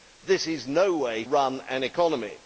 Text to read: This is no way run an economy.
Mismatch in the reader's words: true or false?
false